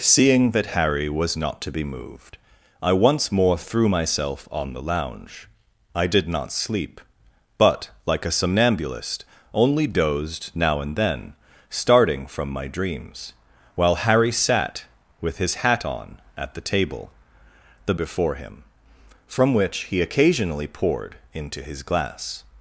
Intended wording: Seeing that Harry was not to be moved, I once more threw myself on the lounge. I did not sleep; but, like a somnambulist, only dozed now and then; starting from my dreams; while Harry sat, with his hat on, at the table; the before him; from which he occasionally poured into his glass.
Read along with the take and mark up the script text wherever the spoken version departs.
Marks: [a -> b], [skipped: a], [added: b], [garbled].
Seeing that Harry was not to be moved, I once more threw myself on the lounge. I did not sleep; but, like a somnambulist, only dozed now and then; starting from my dreams; while Harry sat, with his hat on, at the table; the before him; from which he occasionally poured into his glass.